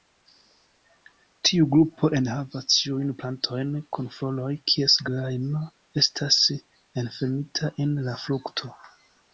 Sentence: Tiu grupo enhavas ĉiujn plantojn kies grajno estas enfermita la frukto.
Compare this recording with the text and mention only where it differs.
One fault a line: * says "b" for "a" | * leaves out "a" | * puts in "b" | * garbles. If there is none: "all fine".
* puts in "kun floroj"
* puts in "en"